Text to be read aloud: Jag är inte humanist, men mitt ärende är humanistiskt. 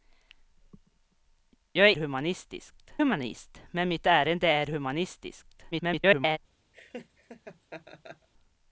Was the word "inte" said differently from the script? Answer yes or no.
yes